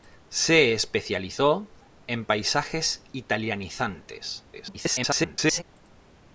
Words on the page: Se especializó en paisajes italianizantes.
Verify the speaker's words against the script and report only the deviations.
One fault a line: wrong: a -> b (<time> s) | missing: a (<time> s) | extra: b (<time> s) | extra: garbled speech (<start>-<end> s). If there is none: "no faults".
extra: garbled speech (4.5-5.6 s)